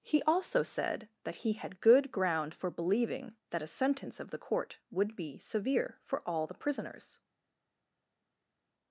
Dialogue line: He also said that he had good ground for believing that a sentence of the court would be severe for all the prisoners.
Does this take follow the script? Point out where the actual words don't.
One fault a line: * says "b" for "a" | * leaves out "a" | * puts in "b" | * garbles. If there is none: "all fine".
all fine